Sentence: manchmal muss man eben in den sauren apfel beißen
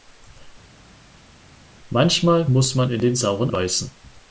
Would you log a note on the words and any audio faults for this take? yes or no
yes